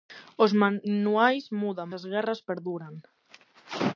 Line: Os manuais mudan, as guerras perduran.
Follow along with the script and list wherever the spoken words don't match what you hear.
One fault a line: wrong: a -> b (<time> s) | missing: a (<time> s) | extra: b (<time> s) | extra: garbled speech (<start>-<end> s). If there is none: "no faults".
no faults